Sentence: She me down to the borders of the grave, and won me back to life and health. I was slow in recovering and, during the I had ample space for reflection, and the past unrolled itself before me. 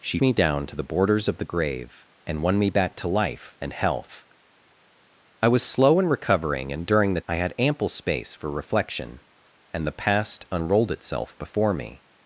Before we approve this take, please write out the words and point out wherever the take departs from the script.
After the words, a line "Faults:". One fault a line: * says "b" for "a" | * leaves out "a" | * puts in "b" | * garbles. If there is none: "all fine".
She me down to the borders of the grave, and won me back to life and health. I was slow in recovering and, during the I had ample space for reflection, and the past unrolled itself before me.
Faults:
all fine